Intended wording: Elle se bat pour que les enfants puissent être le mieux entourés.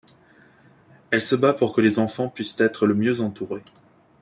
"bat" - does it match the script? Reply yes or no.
yes